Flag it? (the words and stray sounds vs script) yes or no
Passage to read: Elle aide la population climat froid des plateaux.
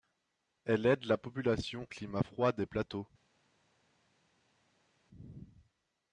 no